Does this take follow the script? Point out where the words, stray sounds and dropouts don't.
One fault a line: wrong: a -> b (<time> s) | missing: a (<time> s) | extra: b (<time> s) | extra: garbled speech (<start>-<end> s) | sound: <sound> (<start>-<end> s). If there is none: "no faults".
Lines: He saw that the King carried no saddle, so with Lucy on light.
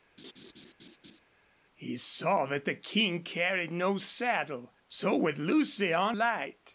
sound: laugh (0.2-1.2 s)